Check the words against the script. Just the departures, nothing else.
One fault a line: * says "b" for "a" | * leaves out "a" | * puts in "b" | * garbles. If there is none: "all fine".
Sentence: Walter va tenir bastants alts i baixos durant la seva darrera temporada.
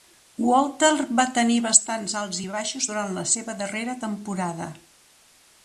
all fine